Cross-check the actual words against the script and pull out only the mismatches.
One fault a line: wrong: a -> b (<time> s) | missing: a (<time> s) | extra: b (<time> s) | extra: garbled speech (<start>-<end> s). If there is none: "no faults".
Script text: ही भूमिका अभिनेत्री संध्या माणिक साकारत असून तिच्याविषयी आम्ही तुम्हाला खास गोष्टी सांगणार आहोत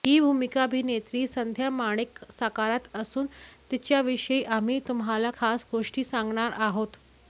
no faults